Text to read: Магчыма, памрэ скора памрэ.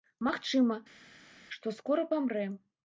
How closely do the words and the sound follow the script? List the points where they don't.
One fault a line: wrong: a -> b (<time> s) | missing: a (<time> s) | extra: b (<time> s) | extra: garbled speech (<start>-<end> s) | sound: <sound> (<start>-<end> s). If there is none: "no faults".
wrong: памрэ -> што (1.6 s)